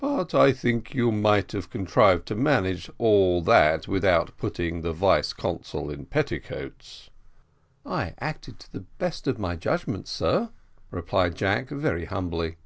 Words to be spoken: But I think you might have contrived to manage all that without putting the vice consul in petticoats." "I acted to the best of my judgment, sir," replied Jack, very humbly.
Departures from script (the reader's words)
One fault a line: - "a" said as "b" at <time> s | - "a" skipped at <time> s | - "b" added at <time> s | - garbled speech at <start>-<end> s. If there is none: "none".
none